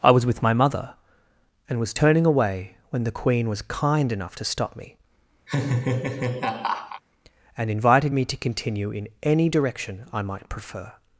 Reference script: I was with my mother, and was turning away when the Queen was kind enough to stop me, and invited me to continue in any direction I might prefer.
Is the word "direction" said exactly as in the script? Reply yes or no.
yes